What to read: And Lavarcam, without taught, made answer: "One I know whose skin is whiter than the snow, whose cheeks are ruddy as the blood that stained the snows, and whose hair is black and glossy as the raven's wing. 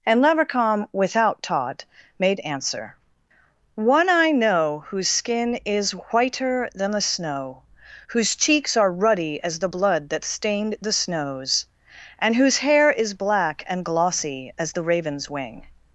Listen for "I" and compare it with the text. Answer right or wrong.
right